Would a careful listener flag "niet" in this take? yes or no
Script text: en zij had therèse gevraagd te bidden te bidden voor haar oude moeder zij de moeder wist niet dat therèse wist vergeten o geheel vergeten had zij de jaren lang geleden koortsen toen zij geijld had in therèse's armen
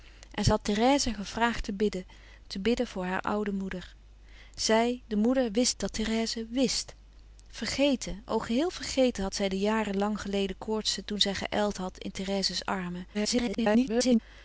yes